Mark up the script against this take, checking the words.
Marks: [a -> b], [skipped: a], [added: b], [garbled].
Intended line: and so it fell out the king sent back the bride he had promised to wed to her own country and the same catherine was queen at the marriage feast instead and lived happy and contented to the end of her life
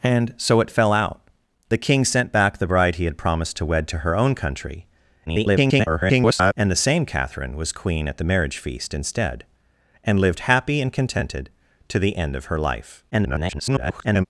and so it fell out the king sent back the bride he had promised to wed to her own country [garbled] and the same catherine was queen at the marriage feast instead and lived happy and contented to the end of her life [garbled]